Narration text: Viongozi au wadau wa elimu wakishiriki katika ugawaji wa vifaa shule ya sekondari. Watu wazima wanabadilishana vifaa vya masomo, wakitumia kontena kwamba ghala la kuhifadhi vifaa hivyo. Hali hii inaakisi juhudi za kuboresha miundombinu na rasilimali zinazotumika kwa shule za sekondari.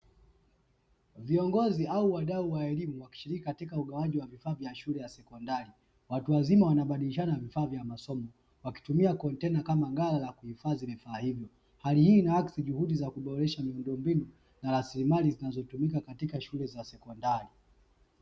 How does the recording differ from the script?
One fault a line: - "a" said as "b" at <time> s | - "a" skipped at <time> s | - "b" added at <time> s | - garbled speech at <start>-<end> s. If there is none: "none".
- "vya" added at 4.5 s
- "kwamba" said as "kama" at 9.6 s
- "kwa" said as "katika" at 16.0 s